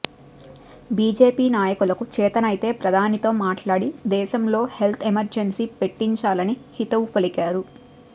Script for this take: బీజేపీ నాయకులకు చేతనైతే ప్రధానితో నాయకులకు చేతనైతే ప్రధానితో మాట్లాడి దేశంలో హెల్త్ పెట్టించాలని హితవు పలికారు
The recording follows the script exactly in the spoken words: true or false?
false